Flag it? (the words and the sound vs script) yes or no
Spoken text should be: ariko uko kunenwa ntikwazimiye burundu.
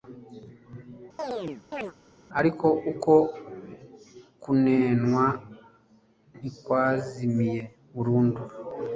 yes